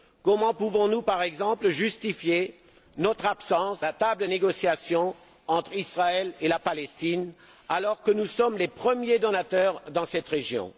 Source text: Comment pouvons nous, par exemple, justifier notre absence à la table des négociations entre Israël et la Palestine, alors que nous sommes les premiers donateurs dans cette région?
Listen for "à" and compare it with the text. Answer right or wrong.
wrong